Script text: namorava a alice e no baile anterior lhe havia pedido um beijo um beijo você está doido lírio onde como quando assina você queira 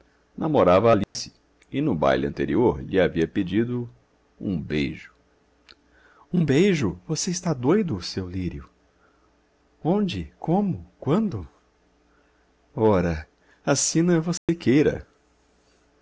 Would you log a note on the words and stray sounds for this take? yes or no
yes